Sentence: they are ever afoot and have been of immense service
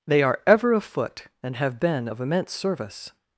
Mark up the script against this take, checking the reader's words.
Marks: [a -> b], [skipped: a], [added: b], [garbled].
they are ever afoot and have been of immense service